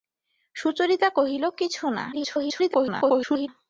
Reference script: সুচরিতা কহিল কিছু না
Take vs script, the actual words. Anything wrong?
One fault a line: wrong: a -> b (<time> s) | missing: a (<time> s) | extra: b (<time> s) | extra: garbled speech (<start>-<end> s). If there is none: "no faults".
extra: garbled speech (2.1-3.5 s)